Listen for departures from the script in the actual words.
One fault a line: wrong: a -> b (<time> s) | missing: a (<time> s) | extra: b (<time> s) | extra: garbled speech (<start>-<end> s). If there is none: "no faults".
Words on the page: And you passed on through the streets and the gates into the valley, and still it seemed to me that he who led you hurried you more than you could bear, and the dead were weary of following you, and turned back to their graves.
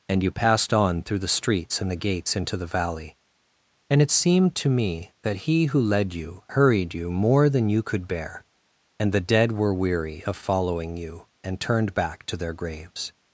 missing: still (4.0 s)